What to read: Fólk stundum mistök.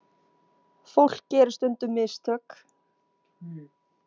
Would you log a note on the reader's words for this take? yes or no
yes